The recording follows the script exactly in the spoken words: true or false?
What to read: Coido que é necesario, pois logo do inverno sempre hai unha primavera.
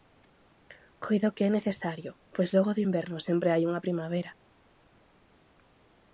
true